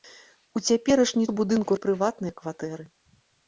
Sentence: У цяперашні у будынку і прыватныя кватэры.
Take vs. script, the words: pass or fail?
pass